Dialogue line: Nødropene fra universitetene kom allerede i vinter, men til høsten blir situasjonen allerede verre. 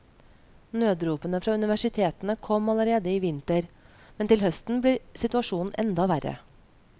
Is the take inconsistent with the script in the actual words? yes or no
yes